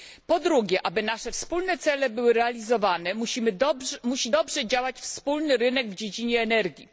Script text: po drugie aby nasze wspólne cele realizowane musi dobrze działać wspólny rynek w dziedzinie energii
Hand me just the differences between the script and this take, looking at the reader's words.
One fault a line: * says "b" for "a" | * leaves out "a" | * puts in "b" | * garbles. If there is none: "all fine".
* puts in "były"